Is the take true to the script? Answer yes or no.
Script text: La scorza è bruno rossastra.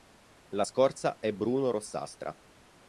yes